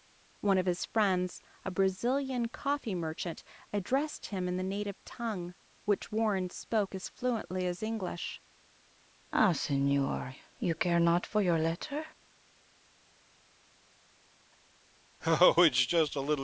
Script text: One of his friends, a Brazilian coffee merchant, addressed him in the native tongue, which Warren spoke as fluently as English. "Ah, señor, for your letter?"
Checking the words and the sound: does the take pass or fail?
fail